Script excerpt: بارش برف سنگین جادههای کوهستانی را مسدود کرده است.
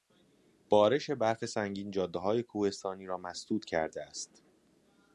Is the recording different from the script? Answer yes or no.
no